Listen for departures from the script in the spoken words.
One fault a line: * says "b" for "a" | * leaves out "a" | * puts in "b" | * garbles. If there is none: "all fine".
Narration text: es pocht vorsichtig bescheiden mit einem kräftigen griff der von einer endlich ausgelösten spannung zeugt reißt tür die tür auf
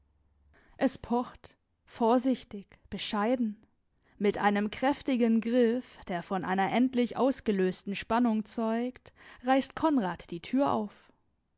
* says "konrad" for "tür"